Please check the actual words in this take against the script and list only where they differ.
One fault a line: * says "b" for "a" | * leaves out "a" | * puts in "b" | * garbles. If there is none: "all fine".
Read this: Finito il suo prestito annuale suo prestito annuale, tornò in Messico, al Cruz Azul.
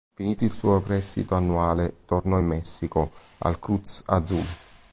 * leaves out "suo prestito annuale"